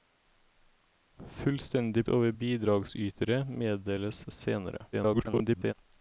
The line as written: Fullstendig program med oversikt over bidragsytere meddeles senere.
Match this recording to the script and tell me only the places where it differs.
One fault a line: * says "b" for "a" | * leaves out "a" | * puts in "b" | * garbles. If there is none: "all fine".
* leaves out "program med oversikt"
* garbles